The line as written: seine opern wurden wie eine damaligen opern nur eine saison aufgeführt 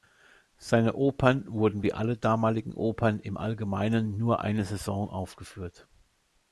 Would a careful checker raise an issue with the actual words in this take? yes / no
yes